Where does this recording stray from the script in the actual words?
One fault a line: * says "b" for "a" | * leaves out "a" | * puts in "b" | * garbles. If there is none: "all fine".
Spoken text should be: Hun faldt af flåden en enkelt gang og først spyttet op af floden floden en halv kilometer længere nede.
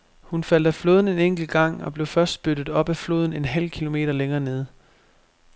* puts in "blev"
* leaves out "floden"